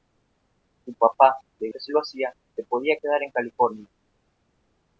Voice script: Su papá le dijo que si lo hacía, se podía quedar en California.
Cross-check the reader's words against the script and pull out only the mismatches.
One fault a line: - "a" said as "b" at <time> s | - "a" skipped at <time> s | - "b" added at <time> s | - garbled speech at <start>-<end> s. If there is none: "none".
- "dijo" skipped at 1.7 s